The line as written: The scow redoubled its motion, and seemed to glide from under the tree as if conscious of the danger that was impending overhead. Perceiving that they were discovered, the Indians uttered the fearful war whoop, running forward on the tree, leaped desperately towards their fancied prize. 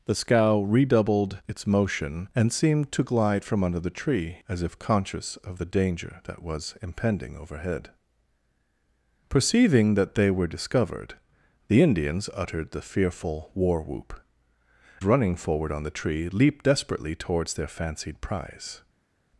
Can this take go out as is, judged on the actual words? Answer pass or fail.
pass